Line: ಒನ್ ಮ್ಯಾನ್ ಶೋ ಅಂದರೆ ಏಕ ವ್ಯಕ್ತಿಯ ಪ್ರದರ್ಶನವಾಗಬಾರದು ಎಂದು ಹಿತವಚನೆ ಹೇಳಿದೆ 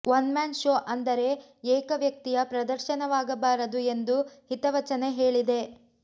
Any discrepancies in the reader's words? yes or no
no